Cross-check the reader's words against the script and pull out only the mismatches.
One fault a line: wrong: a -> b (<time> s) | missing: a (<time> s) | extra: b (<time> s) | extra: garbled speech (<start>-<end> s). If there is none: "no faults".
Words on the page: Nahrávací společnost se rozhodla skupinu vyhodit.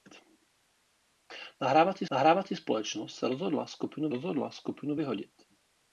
extra: nahrávací (2.1 s)
extra: rozhodla skupinu (4.1 s)